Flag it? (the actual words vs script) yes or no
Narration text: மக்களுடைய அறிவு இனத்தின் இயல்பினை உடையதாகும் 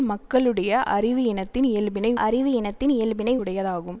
yes